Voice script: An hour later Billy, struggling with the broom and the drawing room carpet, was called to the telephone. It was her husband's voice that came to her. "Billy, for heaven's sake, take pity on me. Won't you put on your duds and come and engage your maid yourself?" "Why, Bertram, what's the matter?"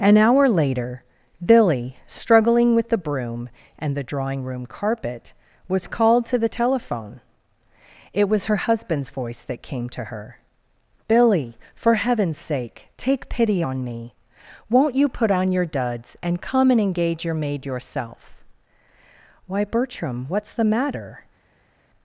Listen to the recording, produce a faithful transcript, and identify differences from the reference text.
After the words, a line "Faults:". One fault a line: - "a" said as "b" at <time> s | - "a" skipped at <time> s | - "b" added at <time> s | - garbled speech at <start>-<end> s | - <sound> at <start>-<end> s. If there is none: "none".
An hour later Billy, struggling with the broom and the drawing room carpet, was called to the telephone. It was her husband's voice that came to her. "Billy, for heaven's sake, take pity on me. Won't you put on your duds and come and engage your maid yourself?" "Why, Bertram, what's the matter?"
Faults:
none